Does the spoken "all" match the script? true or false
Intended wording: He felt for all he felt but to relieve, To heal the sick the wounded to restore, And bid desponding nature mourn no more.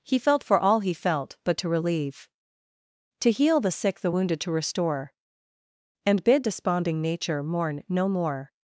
true